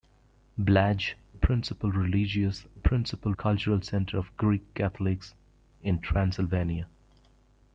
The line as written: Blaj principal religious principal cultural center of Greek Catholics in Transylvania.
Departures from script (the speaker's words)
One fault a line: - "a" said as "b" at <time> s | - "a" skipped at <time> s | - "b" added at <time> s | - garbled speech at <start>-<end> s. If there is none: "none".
none